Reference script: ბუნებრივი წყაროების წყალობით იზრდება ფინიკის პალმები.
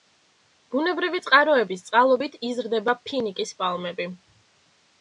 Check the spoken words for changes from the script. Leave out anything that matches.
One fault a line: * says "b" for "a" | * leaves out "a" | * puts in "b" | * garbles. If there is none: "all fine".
all fine